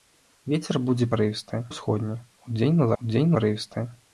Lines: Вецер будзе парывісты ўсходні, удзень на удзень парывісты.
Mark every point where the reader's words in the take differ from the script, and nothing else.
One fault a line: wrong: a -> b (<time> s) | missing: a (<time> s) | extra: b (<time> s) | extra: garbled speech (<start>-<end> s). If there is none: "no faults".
no faults